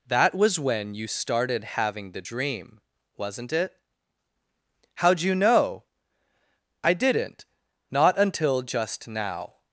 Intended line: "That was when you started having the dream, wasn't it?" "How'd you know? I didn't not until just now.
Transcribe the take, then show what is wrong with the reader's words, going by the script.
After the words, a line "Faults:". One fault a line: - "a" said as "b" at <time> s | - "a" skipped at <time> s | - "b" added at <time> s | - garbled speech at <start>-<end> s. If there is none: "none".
"That was when you started having the dream, wasn't it?" "How'd you know? I didn't not until just now.
Faults:
none